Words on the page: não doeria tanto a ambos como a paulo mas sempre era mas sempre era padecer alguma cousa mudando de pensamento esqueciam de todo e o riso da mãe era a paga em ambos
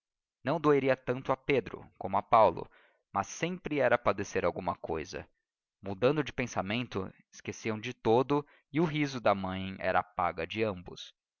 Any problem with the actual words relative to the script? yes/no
yes